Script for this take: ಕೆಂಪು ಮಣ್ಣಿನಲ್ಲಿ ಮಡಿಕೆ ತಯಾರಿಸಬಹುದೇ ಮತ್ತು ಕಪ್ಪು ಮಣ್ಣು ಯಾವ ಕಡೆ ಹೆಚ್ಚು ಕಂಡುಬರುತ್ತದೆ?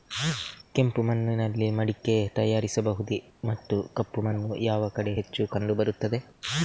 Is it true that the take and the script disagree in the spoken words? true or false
false